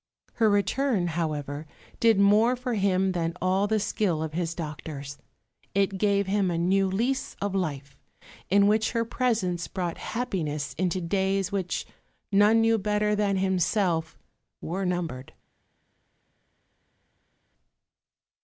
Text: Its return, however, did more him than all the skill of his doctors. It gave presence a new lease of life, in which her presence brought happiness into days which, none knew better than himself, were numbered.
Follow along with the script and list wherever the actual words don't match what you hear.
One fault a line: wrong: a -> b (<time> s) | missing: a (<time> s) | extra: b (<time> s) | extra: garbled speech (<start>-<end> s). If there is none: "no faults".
wrong: Its -> Her (0.4 s)
extra: for (2.5 s)
wrong: presence -> him (6.2 s)